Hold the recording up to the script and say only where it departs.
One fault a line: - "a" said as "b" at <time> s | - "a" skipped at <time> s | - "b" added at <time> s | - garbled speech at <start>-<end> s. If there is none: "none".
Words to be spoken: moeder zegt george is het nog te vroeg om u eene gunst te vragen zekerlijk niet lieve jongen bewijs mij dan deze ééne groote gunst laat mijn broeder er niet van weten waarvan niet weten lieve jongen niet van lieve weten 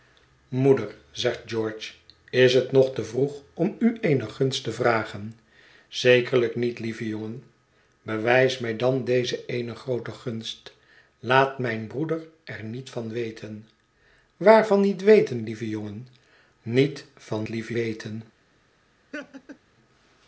none